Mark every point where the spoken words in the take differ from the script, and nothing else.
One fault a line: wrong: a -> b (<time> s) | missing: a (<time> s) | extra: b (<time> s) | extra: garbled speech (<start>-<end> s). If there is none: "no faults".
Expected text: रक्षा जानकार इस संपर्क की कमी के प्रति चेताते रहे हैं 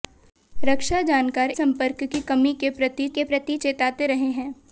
missing: इस (1.5 s)
extra: के प्रति (3.1 s)